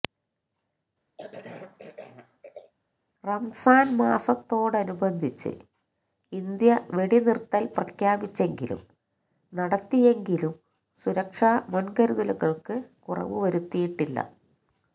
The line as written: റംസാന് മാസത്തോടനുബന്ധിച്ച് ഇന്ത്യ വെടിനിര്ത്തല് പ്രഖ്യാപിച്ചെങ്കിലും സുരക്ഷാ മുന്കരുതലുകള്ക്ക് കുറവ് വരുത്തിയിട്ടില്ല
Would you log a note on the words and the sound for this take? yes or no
yes